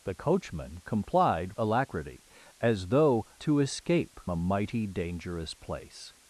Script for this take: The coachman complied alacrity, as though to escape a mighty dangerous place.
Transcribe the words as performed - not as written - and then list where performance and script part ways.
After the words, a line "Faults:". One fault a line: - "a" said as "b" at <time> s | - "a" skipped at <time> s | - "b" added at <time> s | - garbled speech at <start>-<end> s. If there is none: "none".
The coachman complied alacrity, as though to escape a mighty dangerous place.
Faults:
none